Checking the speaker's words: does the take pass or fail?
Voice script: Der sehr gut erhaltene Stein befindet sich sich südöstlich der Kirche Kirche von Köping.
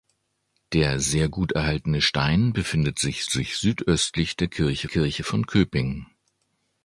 pass